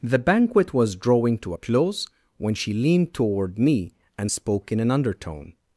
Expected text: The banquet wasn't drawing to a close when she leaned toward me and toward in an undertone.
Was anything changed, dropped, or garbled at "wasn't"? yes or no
yes